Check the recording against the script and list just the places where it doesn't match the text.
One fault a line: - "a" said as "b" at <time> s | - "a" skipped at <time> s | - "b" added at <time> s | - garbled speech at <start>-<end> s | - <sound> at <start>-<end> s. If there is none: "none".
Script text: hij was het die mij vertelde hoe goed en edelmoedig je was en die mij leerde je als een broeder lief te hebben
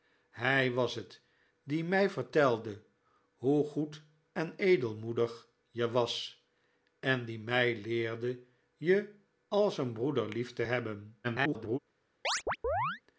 - garbled speech at 11.2-11.8 s
- chirp at 12.2-13.0 s